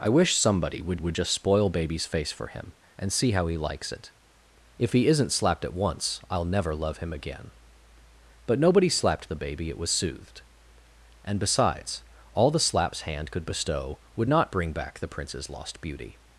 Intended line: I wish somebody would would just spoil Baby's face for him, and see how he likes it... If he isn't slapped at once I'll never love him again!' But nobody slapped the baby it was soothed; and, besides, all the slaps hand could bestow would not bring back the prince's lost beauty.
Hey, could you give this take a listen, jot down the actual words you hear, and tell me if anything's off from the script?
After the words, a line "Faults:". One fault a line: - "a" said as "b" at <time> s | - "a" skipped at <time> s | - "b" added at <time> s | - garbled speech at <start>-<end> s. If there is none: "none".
I wish somebody would would just spoil Baby's face for him, and see how he likes it... If he isn't slapped at once I'll never love him again!' But nobody slapped the baby it was soothed; and, besides, all the slaps hand could bestow would not bring back the prince's lost beauty.
Faults:
none